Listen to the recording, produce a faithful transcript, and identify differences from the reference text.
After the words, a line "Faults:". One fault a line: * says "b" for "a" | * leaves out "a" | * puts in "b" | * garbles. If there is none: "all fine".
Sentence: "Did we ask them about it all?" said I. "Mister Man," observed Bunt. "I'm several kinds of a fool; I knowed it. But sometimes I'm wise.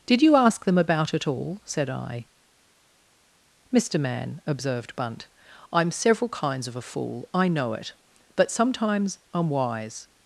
"Did you ask them about it all?" said I. "Mister Man," observed Bunt. "I'm several kinds of a fool; I know it. But sometimes I'm wise.
Faults:
* says "you" for "we"
* says "know" for "knowed"